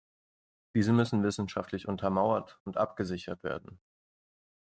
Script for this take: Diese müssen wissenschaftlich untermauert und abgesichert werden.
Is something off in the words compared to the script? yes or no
no